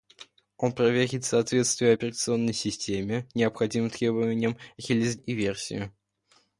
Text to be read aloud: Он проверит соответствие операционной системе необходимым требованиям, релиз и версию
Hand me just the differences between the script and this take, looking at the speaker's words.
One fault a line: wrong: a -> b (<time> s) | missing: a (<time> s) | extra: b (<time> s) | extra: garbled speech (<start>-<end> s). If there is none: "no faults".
no faults